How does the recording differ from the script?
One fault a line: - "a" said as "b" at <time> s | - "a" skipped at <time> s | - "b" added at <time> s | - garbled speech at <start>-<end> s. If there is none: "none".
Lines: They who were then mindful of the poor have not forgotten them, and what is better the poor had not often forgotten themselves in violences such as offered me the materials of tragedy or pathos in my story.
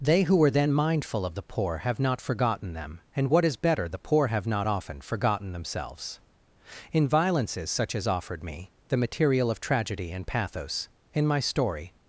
- "had" said as "have" at 4.3 s
- "materials" said as "material" at 9.0 s
- "or" said as "and" at 10.1 s